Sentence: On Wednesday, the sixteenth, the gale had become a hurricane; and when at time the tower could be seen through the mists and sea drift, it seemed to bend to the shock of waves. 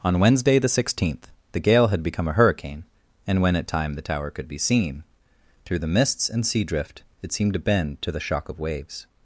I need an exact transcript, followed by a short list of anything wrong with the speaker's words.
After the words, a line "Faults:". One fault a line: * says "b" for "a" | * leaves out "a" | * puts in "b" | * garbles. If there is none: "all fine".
On Wednesday, the sixteenth, the gale had become a hurricane; and when at time the tower could be seen through the mists and sea drift, it seemed to bend to the shock of waves.
Faults:
all fine